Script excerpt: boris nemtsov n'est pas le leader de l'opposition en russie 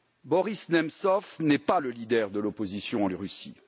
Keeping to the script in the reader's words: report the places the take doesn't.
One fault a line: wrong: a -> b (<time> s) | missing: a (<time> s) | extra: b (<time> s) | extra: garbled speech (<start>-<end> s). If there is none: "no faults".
no faults